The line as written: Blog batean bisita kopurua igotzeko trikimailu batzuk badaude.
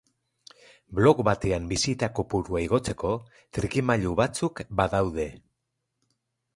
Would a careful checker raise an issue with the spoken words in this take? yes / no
no